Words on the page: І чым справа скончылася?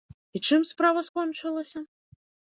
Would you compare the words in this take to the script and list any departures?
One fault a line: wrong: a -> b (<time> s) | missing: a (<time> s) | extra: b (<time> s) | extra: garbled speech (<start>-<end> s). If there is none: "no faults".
no faults